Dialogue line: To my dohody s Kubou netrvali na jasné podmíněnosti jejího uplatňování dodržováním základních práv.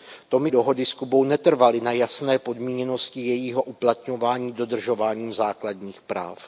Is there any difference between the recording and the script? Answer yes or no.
no